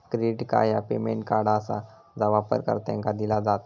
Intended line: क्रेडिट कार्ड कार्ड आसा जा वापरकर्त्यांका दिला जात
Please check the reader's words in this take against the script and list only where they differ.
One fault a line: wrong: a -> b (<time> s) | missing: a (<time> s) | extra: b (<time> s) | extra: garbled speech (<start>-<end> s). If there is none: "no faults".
extra: ह्या पेमेंट (0.7 s)